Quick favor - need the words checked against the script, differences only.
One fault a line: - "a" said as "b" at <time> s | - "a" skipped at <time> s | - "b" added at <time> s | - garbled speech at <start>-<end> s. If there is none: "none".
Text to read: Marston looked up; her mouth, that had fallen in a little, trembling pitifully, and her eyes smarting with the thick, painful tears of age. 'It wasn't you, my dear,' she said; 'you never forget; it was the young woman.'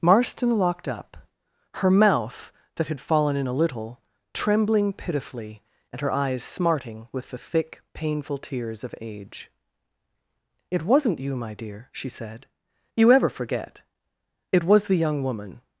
- "looked" said as "locked" at 0.6 s
- "never" said as "ever" at 13.1 s